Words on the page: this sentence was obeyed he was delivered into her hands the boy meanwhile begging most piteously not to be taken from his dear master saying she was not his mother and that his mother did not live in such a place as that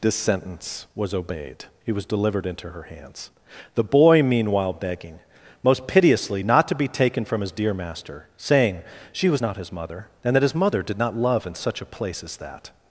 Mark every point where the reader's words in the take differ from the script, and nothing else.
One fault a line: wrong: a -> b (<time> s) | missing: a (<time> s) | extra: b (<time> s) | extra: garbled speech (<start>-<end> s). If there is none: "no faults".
wrong: live -> love (11.2 s)